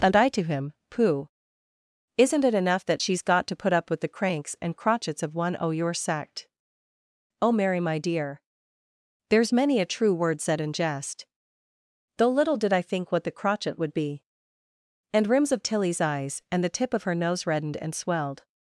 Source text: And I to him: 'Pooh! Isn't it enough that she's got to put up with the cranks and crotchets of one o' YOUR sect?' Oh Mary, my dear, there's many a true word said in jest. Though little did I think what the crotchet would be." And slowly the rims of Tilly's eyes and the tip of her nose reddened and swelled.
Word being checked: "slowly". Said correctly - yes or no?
no